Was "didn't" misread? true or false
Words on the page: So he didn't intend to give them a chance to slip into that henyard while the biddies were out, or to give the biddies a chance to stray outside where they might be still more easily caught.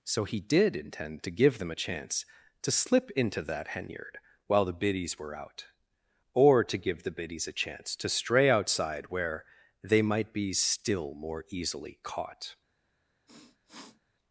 true